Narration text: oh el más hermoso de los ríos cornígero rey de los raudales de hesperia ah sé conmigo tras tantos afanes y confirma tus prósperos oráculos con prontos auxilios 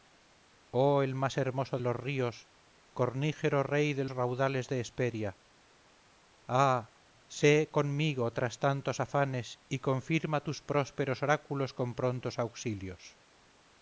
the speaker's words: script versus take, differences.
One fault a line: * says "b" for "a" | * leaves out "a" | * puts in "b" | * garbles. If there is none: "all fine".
* leaves out "de"
* leaves out "los"